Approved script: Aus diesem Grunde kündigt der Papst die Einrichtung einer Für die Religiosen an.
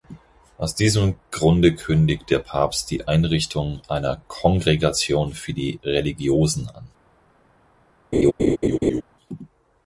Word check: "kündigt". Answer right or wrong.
right